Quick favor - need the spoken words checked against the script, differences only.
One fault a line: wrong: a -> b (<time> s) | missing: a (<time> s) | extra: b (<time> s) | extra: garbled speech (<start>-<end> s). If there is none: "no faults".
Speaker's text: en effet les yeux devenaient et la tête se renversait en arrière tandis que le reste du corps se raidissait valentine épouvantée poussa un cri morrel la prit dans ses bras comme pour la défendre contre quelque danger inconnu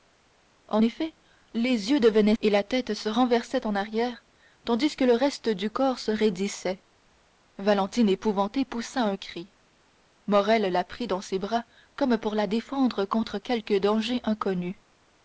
no faults